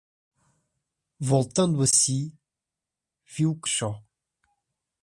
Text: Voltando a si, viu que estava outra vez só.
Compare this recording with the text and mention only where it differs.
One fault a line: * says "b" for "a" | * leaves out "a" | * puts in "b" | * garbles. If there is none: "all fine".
* leaves out "estava outra vez"